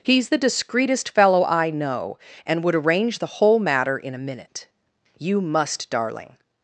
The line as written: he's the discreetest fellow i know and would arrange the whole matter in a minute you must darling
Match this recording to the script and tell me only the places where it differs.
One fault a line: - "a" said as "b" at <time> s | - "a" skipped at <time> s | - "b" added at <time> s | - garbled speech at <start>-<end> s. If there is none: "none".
none